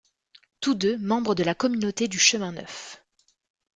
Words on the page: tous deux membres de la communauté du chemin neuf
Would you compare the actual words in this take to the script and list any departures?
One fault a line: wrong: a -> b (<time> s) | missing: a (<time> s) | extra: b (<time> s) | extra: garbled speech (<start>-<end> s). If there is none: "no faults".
no faults